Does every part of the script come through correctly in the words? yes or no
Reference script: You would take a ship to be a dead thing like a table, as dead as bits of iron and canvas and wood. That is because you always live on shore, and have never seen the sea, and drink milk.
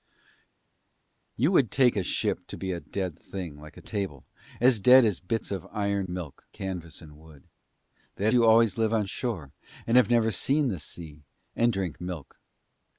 no